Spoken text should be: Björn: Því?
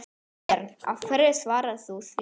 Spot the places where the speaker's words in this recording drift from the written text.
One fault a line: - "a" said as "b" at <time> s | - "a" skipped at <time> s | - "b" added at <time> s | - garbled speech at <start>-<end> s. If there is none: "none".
- "Hverju svarar þú" added at 1.1 s